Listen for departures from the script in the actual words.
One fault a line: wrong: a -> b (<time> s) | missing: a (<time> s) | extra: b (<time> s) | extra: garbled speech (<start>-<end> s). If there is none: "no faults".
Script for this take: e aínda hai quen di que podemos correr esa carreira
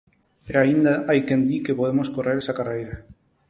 no faults